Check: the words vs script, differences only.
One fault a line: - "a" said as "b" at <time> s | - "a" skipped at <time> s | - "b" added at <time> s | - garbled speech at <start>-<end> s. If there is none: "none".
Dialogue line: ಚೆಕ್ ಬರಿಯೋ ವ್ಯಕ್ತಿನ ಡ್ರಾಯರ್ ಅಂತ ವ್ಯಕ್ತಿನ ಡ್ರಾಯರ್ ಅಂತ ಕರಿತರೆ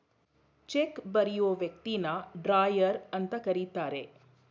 - "ವ್ಯಕ್ತಿನ ಡ್ರಾಯರ್ ಅಂತ" skipped at 3.3 s